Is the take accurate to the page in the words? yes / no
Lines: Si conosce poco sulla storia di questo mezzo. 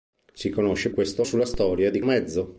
no